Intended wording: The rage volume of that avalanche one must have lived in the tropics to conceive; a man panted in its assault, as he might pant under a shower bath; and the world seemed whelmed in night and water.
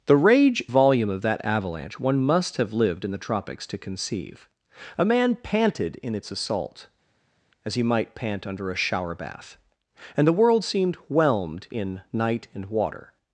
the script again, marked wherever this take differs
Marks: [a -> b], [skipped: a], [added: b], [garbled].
The rage volume of that avalanche one must have lived in the tropics to conceive; a man panted in its assault, as he might pant under a shower bath; and the world seemed whelmed in night and water.